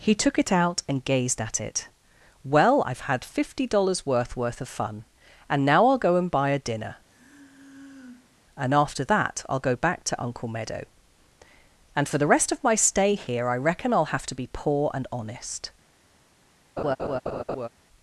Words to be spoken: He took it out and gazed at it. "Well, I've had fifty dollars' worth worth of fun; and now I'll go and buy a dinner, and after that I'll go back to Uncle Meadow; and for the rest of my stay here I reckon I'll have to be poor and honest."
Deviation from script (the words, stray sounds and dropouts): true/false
true